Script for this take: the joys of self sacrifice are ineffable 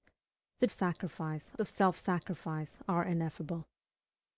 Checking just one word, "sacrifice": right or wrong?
right